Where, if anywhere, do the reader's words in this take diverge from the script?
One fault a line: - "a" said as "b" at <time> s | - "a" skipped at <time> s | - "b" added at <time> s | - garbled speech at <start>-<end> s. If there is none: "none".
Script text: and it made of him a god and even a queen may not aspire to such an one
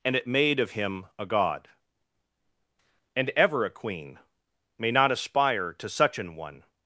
- "even" said as "ever" at 3.4 s